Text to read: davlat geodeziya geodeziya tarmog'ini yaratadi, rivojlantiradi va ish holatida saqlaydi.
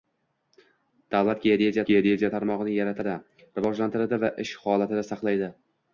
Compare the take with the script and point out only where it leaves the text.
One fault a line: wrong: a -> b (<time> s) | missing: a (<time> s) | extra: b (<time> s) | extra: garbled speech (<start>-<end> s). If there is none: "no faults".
no faults